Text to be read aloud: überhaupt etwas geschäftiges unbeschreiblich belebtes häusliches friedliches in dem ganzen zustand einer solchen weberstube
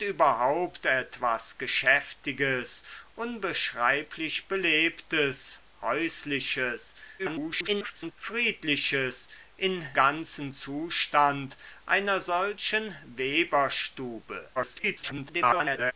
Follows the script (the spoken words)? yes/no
no